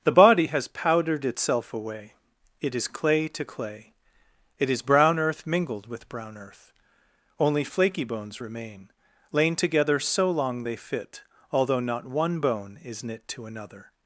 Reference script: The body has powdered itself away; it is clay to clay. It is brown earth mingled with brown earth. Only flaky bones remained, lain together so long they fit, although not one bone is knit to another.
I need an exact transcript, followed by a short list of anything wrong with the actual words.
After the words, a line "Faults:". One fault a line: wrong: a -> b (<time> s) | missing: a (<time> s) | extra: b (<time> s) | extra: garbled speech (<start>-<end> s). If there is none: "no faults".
The body has powdered itself away; it is clay to clay. It is brown earth mingled with brown earth. Only flaky bones remain, lain together so long they fit, although not one bone is knit to another.
Faults:
wrong: remained -> remain (8.4 s)